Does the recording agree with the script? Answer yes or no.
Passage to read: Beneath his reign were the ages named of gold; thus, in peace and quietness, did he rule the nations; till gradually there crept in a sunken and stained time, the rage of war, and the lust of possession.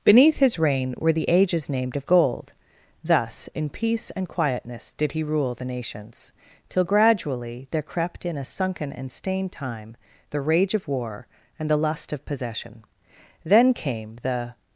no